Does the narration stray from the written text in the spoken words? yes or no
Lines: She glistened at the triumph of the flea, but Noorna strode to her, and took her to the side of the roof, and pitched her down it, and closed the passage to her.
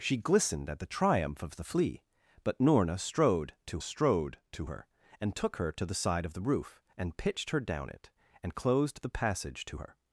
yes